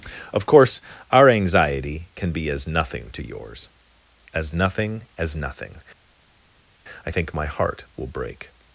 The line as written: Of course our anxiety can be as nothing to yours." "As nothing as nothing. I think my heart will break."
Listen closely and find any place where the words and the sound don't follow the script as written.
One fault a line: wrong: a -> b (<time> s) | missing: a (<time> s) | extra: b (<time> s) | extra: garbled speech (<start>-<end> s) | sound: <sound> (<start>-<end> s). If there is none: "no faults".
no faults